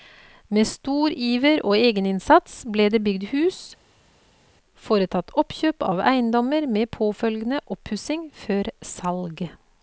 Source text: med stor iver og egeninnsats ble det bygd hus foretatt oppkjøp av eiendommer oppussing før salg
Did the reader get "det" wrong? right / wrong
right